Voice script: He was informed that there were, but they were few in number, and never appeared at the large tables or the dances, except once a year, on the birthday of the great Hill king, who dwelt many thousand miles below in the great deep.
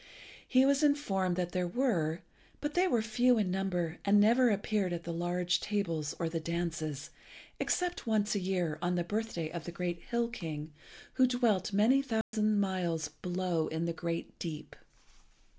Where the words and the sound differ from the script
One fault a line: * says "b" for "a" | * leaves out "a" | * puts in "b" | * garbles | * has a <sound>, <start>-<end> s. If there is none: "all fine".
* has a dropout, 12.2-12.3 s